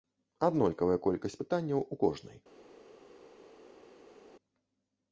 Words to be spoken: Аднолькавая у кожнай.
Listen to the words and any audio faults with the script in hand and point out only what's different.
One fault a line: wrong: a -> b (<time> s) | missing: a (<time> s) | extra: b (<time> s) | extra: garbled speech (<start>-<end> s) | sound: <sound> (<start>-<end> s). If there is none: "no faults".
extra: колькасць пытанняў (1.1 s)